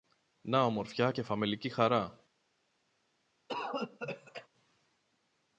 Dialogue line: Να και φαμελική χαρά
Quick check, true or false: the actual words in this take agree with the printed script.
false